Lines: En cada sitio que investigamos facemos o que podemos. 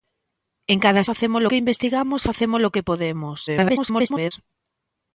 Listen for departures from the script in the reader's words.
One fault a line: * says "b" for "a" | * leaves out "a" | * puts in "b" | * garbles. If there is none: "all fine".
* says "facemos" for "sitio"
* garbles